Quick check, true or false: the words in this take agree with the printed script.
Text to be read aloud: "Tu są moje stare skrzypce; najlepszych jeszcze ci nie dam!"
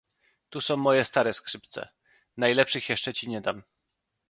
true